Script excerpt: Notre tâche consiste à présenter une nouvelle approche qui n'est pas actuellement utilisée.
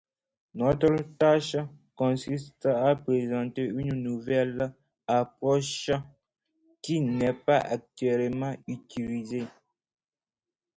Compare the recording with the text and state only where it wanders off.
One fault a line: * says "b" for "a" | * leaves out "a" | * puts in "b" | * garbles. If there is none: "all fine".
all fine